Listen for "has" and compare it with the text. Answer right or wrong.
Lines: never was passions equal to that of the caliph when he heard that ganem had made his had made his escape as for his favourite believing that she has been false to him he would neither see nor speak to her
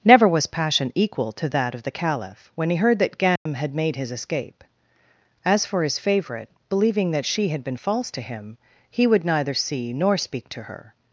wrong